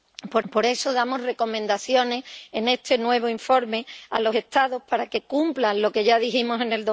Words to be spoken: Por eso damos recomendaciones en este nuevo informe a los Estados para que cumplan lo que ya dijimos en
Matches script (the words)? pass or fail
fail